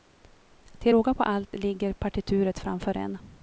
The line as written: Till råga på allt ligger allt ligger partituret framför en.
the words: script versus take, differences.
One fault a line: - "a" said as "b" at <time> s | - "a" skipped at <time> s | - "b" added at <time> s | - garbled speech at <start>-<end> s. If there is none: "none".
- "allt ligger" skipped at 1.9 s